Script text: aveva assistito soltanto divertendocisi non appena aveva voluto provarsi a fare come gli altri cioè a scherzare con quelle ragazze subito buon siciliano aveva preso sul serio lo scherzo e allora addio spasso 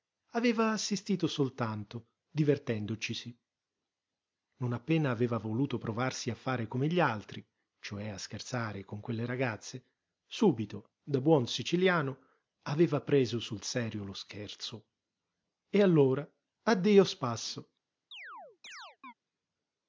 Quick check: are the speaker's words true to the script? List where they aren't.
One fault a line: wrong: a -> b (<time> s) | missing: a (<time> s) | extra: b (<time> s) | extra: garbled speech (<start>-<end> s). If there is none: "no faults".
extra: da (11.0 s)